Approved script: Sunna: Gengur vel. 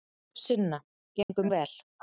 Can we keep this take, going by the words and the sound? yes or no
no